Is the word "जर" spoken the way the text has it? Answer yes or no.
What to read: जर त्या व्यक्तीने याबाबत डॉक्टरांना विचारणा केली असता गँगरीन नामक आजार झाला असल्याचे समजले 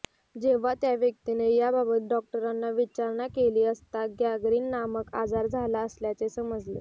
no